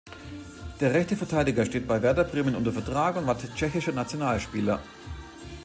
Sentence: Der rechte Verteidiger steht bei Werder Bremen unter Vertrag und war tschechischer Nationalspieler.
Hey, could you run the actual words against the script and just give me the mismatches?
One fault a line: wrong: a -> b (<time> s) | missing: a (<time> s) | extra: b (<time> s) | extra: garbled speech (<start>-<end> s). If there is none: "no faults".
no faults